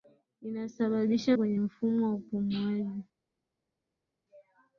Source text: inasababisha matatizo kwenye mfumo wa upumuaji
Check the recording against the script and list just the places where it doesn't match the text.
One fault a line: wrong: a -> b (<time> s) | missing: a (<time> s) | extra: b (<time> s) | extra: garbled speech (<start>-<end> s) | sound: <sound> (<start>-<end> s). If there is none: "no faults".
missing: matatizo (1.4 s)